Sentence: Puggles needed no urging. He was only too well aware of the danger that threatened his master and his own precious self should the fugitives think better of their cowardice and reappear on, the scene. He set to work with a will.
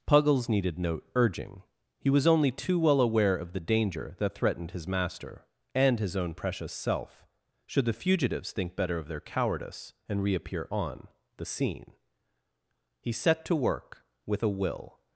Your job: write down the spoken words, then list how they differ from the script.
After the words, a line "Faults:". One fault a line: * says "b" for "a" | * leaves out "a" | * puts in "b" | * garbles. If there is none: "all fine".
Puggles needed no urging. He was only too well aware of the danger that threatened his master and his own precious self should the fugitives think better of their cowardice and reappear on, the scene. He set to work with a will.
Faults:
all fine